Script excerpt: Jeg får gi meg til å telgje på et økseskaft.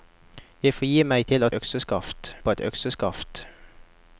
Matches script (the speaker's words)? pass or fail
fail